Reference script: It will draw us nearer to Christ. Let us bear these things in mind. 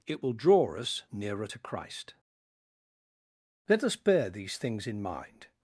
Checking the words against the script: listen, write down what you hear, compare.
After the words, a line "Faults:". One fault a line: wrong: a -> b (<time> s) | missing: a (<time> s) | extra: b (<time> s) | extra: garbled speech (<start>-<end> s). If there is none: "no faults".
It will draw us nearer to Christ. Let us bear these things in mind.
Faults:
no faults